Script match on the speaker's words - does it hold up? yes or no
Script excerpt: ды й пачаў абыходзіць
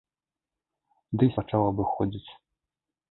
yes